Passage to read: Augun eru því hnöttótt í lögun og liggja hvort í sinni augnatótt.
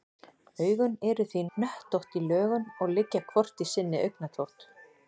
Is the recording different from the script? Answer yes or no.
no